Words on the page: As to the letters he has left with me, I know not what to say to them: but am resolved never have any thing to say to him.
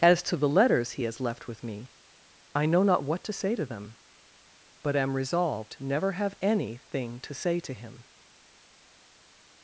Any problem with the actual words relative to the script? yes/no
no